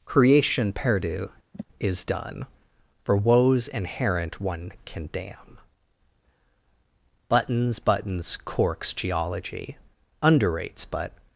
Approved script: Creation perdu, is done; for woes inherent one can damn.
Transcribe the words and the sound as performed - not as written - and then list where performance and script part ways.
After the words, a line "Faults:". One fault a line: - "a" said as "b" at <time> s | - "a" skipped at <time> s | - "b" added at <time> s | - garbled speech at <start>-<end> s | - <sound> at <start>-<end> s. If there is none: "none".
Creation perdu, is done; for woes inherent one can damn. Buttons, buttons, corks, geology underrates but
Faults:
- sigh at 1.5-1.6 s
- "Buttons buttons corks geology underrates but" added at 7.3 s